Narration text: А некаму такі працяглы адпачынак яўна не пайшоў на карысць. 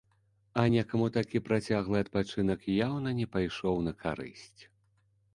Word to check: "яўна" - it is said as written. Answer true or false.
true